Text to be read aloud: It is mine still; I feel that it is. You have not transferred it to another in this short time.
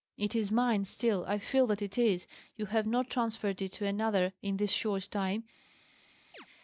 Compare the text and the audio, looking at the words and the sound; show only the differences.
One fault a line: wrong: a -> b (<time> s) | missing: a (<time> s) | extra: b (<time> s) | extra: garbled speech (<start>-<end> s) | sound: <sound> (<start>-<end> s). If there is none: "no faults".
sound: chirp (6.3-6.5 s)